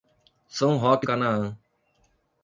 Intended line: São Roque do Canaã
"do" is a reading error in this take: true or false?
true